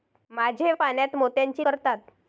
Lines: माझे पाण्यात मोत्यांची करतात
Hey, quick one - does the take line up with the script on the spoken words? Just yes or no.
yes